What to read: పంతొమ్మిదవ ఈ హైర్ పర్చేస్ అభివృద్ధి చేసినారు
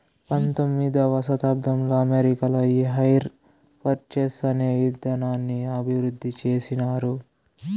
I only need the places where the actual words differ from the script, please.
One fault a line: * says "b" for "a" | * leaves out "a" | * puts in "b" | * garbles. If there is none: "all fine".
* puts in "శతాబ్దంలో అమెరికాలో"
* puts in "అనే ఇదానాన్ని"